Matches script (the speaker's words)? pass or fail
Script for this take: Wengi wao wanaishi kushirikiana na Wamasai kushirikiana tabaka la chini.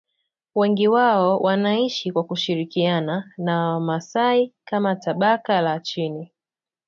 fail